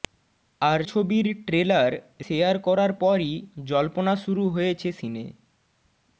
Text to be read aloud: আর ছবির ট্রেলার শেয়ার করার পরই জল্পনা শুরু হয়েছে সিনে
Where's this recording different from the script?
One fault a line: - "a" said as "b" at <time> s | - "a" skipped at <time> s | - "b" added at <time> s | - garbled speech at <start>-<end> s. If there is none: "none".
none